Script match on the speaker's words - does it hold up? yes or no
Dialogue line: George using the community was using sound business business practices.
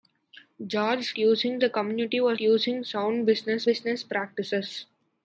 yes